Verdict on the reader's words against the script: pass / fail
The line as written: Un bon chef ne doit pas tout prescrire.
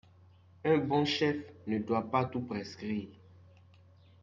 pass